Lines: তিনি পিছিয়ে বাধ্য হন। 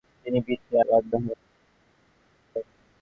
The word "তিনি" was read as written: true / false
true